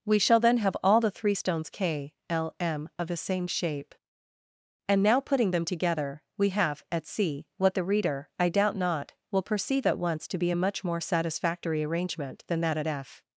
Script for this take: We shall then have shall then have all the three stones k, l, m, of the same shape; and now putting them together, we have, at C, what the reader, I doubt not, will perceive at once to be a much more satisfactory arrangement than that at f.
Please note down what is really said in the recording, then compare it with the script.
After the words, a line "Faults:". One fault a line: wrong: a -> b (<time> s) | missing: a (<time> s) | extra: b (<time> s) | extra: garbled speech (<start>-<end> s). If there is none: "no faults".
We shall then have all the three stones k, l, m, of the same shape; and now putting them together, we have, at C, what the reader, I doubt not, will perceive at once to be a much more satisfactory arrangement than that at f.
Faults:
missing: shall then have (0.8 s)